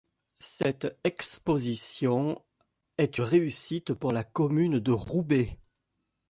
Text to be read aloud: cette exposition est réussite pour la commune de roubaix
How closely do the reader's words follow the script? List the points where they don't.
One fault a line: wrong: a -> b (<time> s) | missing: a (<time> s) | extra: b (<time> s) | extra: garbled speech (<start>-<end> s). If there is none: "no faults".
no faults